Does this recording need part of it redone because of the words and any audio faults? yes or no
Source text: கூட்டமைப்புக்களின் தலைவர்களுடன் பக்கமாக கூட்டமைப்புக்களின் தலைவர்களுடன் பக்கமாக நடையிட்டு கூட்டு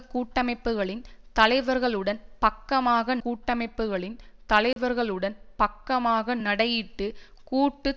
yes